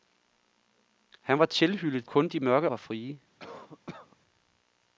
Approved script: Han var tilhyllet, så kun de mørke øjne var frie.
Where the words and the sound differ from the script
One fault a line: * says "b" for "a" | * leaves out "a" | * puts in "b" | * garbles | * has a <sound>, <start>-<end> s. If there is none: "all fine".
* leaves out "så"
* leaves out "øjne"
* has a cough, 3.4-4.2 s